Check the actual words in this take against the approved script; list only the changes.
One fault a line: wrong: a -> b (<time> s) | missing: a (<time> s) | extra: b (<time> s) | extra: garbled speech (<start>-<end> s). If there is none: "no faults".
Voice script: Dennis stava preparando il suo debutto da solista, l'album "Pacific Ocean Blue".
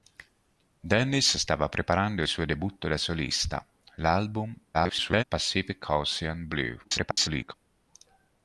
missing: il (2.2 s)
extra: garbled speech (4.7-5.2 s)
extra: garbled speech (6.8-7.5 s)